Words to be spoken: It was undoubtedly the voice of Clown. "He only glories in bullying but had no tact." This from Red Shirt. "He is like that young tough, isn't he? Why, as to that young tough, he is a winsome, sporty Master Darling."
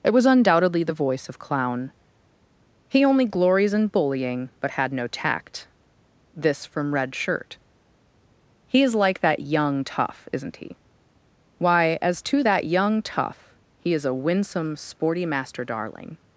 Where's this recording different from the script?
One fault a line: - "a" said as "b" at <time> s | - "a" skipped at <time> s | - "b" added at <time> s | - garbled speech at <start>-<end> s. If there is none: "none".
none